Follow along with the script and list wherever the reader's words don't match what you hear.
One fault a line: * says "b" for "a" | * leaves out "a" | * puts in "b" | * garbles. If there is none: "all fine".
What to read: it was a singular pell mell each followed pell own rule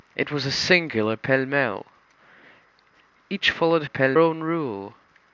all fine